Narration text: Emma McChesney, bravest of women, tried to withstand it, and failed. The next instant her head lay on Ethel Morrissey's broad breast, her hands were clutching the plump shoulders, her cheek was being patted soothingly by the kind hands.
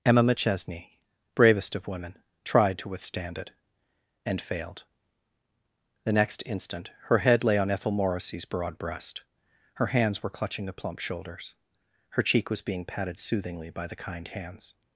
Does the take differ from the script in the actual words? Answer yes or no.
no